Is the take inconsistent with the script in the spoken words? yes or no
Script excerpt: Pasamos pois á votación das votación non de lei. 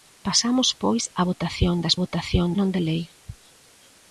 no